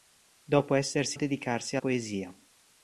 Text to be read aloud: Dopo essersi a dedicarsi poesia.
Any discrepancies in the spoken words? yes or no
no